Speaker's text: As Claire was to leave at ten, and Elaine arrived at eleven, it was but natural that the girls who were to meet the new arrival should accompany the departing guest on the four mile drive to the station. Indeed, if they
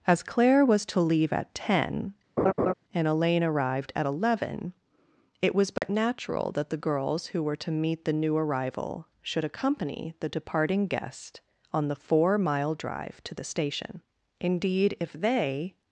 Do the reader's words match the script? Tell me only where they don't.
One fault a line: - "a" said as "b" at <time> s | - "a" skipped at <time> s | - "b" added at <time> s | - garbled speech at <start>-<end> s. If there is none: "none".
none